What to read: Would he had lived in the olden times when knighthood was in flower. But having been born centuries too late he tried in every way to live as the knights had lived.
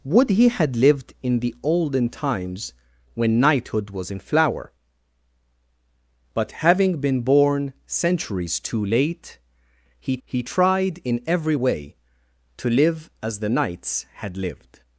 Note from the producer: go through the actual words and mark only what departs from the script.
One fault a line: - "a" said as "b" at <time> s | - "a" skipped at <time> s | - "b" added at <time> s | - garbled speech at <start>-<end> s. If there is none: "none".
- "he" added at 10.2 s